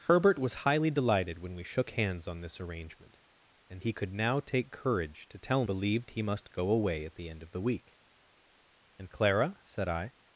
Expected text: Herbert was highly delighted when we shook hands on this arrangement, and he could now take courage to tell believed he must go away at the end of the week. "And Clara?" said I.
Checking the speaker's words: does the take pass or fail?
pass